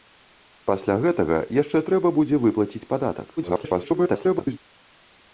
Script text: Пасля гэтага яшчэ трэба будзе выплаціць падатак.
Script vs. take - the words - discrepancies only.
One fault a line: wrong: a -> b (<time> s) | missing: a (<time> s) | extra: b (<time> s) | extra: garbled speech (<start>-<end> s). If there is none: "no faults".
extra: garbled speech (3.4-4.6 s)